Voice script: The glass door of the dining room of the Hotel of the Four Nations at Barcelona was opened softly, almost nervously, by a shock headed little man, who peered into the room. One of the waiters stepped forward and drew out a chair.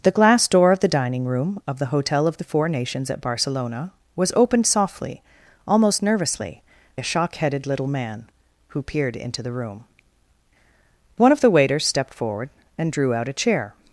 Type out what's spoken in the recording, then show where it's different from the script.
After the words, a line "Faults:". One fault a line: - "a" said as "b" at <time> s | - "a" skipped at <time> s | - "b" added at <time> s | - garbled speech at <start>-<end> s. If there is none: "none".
The glass door of the dining room of the Hotel of the Four Nations at Barcelona was opened softly, almost nervously, a shock headed little man, who peered into the room. One of the waiters stepped forward and drew out a chair.
Faults:
- "by" skipped at 6.6 s